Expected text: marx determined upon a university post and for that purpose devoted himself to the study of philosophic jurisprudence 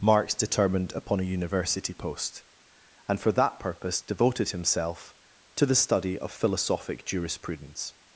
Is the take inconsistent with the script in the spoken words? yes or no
no